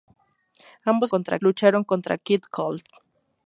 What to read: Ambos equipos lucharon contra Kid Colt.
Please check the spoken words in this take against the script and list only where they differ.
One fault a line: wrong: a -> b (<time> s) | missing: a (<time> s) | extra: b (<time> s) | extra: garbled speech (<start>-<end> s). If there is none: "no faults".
wrong: equipos -> contra (1.0 s)